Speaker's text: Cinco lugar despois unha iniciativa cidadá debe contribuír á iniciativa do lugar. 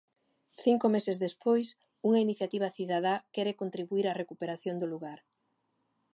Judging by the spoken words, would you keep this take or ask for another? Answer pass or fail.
fail